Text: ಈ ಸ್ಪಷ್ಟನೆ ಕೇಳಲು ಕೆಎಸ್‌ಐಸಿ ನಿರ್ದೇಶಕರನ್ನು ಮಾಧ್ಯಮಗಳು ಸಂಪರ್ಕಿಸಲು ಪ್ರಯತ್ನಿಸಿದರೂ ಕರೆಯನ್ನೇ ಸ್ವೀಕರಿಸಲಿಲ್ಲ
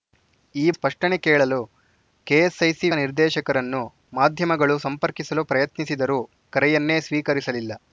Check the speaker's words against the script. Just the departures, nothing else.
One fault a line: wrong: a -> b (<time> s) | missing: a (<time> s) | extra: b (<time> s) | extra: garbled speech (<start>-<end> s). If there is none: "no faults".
no faults